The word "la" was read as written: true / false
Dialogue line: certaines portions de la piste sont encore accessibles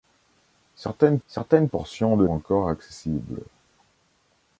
false